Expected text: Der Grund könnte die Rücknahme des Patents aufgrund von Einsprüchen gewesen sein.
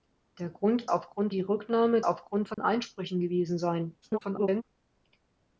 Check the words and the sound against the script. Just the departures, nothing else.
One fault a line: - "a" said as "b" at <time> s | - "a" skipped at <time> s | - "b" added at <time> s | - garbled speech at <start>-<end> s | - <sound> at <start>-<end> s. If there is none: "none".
- "könnte" said as "aufgrund" at 0.9 s
- "des Patents" skipped at 2.0 s
- dropout at 2.5-2.6 s
- garbled speech at 4.0-4.6 s